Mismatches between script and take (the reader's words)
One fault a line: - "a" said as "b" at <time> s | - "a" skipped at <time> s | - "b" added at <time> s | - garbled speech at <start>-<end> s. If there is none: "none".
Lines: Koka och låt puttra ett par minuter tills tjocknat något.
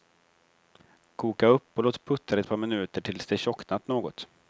- "upp" added at 1.5 s
- "det" added at 3.2 s